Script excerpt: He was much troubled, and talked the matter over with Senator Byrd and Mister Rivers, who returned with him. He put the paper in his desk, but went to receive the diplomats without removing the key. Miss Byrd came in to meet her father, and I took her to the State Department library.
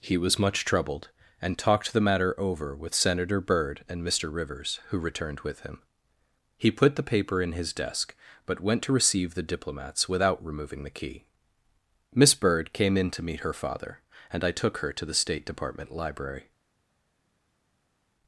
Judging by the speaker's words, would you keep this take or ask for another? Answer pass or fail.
pass